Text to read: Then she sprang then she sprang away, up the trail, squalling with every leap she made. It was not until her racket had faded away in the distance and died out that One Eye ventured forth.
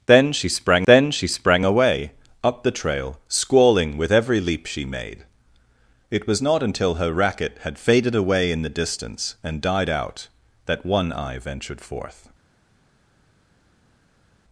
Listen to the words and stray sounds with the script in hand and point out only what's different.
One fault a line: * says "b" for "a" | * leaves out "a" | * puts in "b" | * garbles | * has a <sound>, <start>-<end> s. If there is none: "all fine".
all fine